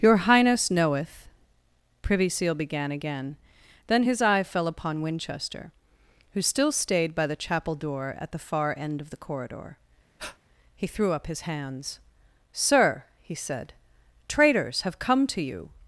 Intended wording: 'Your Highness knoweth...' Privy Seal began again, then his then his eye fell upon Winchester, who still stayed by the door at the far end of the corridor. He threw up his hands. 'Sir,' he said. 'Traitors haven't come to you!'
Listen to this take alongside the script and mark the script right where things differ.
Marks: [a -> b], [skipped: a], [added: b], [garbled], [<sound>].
'Your Highness knoweth...' Privy Seal began again, then his [skipped: then his] eye fell upon Winchester, who still stayed by the [added: chapel] door at the far end of the corridor. [breath] He threw up his hands. 'Sir,' he said. 'Traitors [haven't -> have] come to you!'